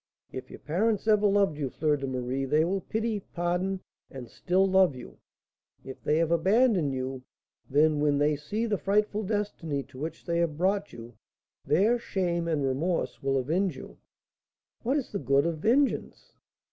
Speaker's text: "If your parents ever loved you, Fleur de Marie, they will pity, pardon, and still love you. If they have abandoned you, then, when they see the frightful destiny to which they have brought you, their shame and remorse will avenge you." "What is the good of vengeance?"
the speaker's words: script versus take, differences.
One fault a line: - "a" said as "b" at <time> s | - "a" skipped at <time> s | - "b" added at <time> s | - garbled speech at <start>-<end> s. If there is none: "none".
none